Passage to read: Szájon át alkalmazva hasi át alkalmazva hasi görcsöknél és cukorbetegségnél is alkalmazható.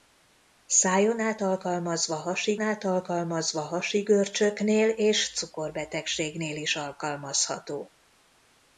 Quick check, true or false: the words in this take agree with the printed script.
true